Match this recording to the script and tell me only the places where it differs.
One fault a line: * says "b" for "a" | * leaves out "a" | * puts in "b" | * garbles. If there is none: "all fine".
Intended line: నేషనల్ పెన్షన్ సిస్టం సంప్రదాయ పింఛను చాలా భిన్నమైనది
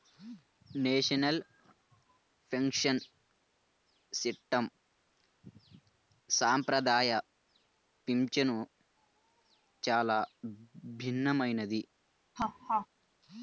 all fine